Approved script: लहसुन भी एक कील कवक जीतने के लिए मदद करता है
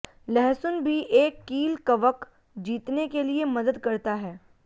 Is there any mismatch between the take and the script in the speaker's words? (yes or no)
no